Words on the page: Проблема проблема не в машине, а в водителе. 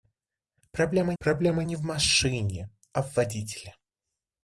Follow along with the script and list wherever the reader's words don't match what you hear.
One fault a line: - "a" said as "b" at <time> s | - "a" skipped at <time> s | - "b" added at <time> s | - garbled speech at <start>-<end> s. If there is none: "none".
none